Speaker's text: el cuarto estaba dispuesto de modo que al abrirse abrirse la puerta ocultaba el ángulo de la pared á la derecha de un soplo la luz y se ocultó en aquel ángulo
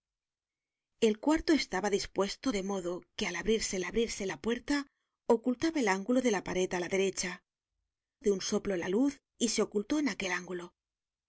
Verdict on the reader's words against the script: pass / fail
pass